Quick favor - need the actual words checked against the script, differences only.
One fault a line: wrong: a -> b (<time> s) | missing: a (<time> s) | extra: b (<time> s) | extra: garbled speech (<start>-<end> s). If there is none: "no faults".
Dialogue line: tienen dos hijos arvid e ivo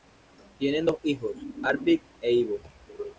no faults